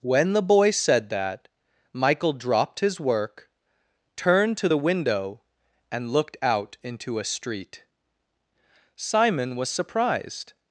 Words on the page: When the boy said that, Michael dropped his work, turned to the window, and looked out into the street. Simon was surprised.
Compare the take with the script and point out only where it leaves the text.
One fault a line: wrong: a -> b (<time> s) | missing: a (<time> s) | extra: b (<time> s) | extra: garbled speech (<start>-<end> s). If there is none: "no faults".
wrong: the -> a (7.2 s)